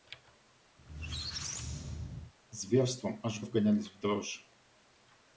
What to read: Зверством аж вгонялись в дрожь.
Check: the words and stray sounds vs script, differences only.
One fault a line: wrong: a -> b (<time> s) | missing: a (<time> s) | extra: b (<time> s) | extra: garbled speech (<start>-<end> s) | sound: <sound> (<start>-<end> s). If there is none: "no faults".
sound: squeak (0.8-2.3 s)